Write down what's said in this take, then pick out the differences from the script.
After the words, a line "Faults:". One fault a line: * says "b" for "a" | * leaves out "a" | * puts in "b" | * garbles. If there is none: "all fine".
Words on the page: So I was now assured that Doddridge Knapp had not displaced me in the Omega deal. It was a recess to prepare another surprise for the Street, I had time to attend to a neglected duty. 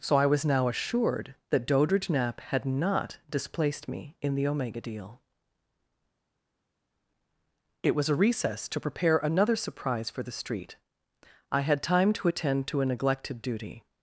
So I was now assured that Doddridge Knapp had not displaced me in the Omega deal. It was a recess to prepare another surprise for the Street, I had time to attend to a neglected duty.
Faults:
all fine